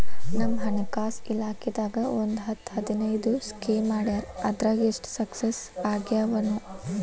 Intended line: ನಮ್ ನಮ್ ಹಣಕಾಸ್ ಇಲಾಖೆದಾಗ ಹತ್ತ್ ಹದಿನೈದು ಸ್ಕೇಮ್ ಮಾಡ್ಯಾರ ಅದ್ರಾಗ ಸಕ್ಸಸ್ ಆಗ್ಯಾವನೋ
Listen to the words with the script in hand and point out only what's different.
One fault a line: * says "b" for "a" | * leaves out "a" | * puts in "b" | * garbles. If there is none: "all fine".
* leaves out "ನಮ್"
* puts in "ಒಂದ್"
* puts in "ಎಷ್ಟ"